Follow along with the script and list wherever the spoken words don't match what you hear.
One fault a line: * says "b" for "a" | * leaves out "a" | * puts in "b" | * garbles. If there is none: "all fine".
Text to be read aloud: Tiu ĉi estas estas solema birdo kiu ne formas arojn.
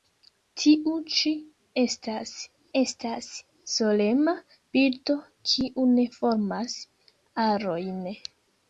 all fine